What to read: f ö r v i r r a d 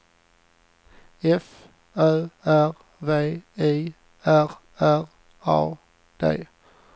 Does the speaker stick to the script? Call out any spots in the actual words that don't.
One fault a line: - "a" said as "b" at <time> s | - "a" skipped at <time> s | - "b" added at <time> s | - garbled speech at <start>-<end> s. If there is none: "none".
none